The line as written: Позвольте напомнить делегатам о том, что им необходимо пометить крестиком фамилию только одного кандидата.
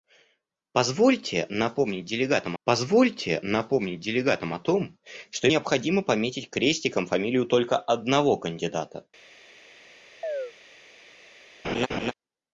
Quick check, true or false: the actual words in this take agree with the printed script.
false